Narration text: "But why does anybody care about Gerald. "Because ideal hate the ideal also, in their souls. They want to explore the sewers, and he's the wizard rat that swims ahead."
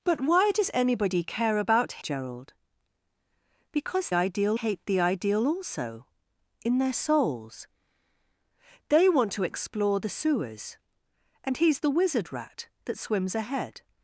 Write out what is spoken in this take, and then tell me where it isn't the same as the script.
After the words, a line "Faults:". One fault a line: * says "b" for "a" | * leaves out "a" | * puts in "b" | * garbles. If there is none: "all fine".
"But why does anybody care about Gerald. "Because ideal hate the ideal also, in their souls. They want to explore the sewers, and he's the wizard rat that swims ahead."
Faults:
all fine